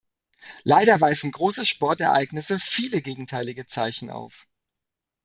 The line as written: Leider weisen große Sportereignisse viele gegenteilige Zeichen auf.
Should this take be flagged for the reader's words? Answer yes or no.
no